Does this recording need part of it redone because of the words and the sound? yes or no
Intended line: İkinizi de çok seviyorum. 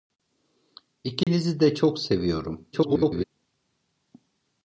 yes